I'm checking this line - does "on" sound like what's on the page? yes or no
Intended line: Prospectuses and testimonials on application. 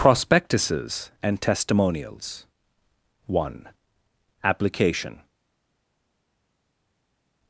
no